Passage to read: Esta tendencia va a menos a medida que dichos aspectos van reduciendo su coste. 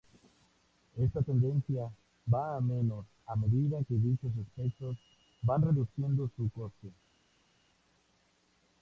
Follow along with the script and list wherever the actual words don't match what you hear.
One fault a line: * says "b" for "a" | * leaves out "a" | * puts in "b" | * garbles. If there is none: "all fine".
all fine